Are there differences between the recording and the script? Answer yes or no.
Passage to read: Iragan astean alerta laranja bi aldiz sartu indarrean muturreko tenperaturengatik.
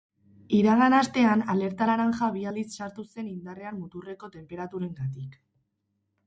yes